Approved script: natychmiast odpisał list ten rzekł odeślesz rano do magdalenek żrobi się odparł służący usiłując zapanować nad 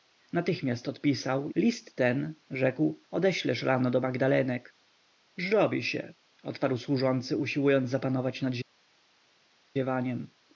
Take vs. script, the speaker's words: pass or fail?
pass